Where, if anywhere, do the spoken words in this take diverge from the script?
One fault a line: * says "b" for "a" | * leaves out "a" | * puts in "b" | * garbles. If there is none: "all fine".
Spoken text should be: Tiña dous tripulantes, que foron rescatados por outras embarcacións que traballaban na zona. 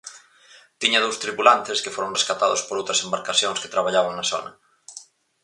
all fine